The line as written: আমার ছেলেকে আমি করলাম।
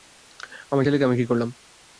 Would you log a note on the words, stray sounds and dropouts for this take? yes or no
yes